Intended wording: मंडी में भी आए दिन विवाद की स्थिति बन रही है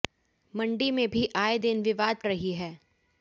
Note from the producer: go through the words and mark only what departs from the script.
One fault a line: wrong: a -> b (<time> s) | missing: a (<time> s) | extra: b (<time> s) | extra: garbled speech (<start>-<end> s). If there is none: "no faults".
missing: की स्थिति बन (2.2 s)